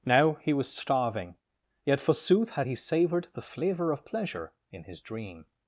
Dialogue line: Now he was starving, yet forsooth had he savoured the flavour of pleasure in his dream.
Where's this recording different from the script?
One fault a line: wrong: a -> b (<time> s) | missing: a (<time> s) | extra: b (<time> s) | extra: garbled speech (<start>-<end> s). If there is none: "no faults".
no faults